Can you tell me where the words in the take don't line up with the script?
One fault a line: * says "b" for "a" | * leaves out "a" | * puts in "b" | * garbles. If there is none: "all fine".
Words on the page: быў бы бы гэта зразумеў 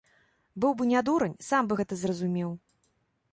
* puts in "не дурань сам"